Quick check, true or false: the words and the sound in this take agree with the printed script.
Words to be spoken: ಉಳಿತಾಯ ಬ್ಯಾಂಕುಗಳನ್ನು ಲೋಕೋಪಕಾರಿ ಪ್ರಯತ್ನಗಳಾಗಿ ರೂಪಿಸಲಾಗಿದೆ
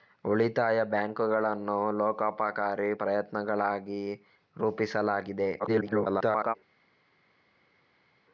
false